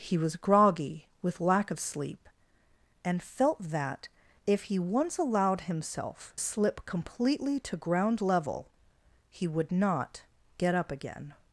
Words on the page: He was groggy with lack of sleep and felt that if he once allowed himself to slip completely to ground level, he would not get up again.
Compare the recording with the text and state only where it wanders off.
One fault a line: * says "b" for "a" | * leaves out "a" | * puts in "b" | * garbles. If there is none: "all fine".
* leaves out "to"